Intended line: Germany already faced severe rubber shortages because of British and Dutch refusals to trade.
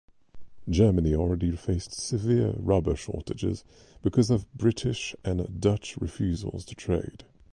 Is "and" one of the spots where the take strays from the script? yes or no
no